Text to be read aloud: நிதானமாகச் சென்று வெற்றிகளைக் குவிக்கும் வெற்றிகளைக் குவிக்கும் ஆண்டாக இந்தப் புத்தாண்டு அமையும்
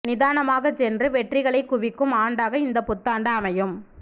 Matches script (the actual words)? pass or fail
fail